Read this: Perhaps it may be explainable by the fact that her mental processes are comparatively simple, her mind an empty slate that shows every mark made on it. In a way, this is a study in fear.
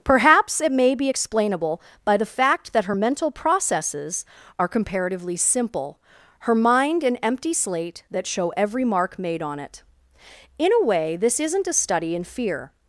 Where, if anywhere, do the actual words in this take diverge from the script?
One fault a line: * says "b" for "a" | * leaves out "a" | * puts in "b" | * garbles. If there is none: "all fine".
* says "show" for "shows"
* says "isn't" for "is"